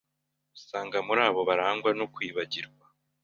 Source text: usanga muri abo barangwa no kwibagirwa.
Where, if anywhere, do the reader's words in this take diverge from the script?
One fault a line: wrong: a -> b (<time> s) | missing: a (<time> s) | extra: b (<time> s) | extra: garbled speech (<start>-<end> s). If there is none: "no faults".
no faults